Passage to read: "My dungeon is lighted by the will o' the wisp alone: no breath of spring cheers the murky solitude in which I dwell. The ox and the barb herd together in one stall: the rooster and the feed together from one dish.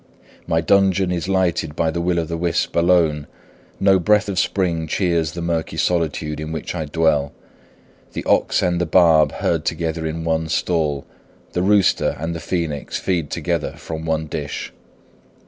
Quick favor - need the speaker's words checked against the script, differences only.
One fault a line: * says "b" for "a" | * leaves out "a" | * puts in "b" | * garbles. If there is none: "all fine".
* puts in "phoenix"